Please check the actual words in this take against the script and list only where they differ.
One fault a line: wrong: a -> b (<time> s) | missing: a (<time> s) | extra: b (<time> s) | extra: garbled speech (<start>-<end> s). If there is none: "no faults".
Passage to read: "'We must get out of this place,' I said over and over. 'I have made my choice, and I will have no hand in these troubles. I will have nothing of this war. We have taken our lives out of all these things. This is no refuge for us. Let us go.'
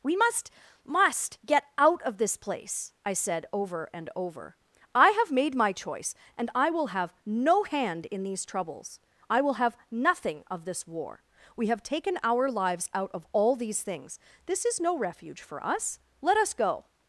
extra: must (0.8 s)